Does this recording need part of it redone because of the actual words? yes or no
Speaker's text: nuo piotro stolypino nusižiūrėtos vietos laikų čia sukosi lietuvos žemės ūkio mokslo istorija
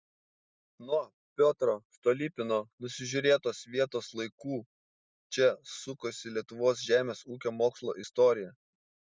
no